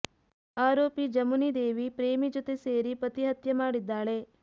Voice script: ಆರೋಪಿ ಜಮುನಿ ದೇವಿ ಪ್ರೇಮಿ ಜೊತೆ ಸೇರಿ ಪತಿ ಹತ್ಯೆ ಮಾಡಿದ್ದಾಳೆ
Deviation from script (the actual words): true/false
false